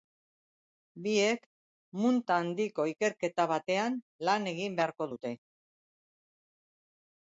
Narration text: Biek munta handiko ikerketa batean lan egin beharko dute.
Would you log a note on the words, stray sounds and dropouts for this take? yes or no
no